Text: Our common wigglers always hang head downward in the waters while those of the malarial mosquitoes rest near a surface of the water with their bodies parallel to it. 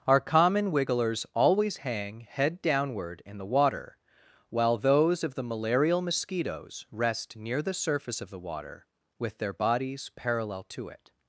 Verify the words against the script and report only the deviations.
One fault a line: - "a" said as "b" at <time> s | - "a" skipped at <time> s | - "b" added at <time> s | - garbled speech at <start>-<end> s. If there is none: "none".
- "waters" said as "water" at 3.5 s
- "a" said as "the" at 7.6 s